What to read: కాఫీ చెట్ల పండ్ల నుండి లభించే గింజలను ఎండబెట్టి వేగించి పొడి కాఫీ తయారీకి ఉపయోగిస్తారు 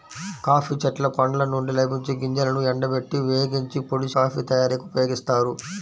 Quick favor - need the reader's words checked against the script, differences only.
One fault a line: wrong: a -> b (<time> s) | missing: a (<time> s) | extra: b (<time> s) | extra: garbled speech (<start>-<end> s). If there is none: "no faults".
no faults